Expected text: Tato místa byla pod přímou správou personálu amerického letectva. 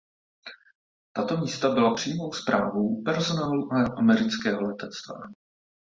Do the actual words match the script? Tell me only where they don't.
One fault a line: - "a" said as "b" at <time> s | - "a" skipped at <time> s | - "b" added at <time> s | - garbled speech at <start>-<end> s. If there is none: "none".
- "pod" skipped at 1.9 s